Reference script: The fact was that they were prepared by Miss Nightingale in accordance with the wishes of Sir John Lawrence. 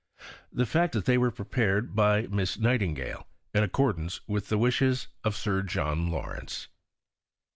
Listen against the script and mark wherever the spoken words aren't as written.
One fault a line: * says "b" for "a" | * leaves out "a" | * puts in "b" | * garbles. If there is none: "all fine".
* leaves out "was"